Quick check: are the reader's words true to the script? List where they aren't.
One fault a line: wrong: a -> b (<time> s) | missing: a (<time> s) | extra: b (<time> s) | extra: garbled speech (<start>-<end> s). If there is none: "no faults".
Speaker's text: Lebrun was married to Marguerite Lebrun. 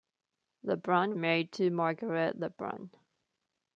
missing: was (1.1 s)